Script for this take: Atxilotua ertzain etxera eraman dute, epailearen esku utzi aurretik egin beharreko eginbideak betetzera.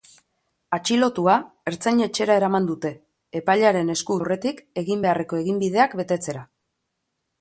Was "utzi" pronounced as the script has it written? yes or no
no